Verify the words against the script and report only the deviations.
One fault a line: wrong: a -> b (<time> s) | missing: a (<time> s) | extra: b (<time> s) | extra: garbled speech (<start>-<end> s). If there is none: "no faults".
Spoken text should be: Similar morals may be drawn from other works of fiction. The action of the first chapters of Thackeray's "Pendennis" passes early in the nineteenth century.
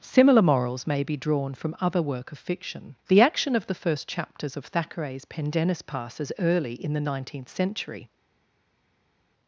wrong: works -> work (2.0 s)